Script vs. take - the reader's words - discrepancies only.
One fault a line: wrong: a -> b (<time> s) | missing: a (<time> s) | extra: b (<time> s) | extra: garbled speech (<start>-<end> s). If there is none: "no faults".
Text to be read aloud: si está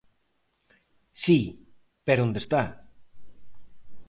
extra: pero onde (2.0 s)